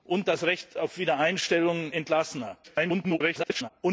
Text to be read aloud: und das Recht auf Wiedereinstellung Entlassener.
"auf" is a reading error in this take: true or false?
false